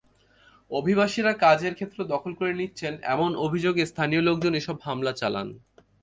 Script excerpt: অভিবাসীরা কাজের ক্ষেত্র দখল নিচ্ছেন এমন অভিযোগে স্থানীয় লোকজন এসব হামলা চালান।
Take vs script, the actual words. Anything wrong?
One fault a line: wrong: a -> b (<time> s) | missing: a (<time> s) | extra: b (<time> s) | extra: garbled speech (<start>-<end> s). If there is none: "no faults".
extra: করে (2.4 s)